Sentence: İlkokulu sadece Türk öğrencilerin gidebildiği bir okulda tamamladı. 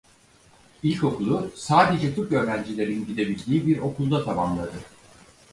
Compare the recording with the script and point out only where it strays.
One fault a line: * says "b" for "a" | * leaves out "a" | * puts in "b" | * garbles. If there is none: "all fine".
all fine